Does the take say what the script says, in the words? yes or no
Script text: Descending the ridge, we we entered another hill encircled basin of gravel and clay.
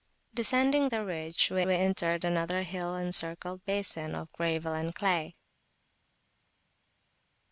yes